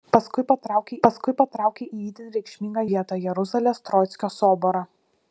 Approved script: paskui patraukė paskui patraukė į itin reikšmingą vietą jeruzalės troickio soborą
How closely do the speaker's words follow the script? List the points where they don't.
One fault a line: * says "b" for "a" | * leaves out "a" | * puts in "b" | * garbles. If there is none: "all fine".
all fine